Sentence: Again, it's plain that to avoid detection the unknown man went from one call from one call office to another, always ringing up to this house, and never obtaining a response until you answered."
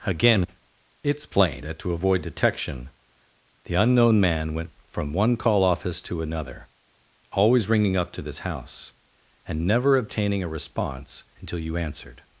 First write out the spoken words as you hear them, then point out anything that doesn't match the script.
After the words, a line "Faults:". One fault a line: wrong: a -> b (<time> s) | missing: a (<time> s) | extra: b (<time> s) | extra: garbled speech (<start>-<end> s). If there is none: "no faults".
Again, it's plain that to avoid detection the unknown man went from one call office to another, always ringing up to this house, and never obtaining a response until you answered."
Faults:
missing: from one call (5.6 s)